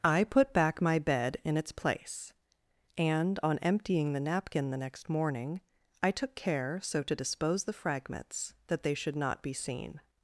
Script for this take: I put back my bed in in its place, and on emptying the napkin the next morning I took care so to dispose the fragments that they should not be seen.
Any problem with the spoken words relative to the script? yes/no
yes